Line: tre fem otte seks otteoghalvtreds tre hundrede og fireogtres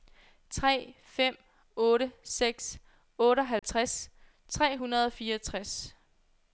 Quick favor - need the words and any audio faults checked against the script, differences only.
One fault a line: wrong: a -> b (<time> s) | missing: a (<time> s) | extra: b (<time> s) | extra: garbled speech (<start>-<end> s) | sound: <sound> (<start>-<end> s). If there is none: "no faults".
sound: dropout (3.6-3.6 s)